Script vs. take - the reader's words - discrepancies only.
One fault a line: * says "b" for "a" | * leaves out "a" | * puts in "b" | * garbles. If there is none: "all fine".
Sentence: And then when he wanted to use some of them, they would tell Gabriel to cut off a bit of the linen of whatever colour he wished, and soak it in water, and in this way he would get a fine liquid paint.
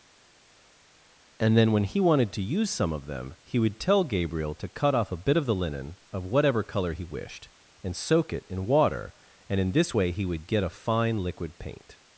* says "he" for "they"